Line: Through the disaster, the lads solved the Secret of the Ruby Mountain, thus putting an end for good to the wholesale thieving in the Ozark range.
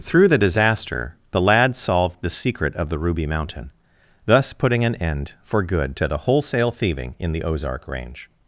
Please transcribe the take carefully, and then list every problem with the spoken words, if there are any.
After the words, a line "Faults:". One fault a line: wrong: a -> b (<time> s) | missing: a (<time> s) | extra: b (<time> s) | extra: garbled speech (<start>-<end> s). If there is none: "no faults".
Through the disaster, the lads solved the Secret of the Ruby Mountain, thus putting an end for good to the wholesale thieving in the Ozark range.
Faults:
no faults